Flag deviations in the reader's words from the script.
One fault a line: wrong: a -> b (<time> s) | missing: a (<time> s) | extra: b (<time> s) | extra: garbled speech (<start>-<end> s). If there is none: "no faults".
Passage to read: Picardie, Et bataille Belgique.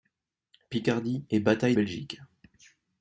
no faults